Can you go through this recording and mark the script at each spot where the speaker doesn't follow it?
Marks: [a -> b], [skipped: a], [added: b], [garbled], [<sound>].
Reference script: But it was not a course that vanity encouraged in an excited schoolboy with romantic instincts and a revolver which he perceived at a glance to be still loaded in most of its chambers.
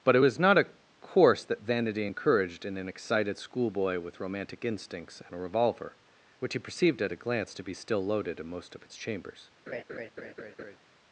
But it was not a course that vanity encouraged in an excited schoolboy with romantic instincts and a revolver which he perceived at a glance to be still loaded in most of its chambers. [laugh]